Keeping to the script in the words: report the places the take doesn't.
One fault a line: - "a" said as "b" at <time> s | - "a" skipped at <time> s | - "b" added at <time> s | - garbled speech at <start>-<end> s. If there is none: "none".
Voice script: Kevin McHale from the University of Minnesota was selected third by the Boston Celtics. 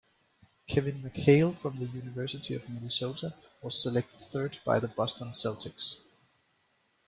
none